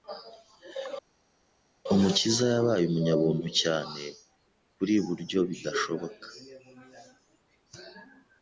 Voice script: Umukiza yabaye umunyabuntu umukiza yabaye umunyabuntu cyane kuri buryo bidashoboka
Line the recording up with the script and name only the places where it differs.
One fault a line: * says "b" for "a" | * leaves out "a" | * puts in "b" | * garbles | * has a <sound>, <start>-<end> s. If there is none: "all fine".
* leaves out "umukiza yabaye umunyabuntu"